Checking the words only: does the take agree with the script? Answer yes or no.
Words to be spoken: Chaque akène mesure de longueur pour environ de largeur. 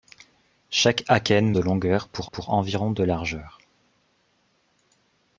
no